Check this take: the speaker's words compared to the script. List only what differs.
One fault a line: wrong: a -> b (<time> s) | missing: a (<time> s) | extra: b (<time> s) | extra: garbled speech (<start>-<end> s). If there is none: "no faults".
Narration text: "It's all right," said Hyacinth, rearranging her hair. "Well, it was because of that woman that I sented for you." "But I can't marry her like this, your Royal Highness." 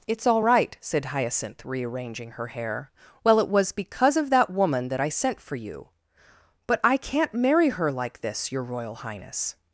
wrong: sented -> sent (5.1 s)